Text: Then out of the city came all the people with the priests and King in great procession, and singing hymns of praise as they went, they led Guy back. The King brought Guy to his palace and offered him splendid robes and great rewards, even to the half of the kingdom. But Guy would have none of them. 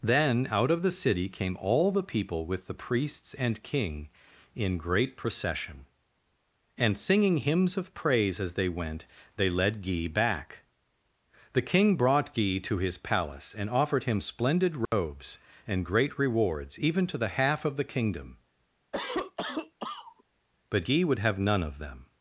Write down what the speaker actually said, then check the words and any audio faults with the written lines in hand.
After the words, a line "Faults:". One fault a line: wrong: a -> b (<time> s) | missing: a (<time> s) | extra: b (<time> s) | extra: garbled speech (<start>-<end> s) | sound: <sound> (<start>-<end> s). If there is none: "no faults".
Then out of the city came all the people with the priests and King in great procession, and singing hymns of praise as they went, they led Guy back. The King brought Guy to his palace and offered him splendid robes and great rewards, even to the half of the kingdom. But Guy would have none of them.
Faults:
sound: dropout (14.9-14.9 s)
sound: cough (18.9-20.2 s)